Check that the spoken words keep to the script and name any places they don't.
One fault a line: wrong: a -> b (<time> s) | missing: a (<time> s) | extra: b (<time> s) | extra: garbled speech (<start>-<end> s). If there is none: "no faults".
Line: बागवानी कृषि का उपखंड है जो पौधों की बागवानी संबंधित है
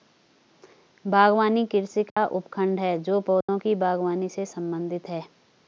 extra: से (4.3 s)